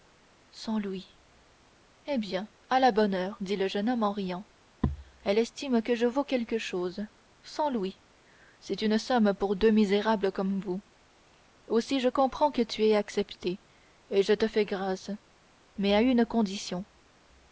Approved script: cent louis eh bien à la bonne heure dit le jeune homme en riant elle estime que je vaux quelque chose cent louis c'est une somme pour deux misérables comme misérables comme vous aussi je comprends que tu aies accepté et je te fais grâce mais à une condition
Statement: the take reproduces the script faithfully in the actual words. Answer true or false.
false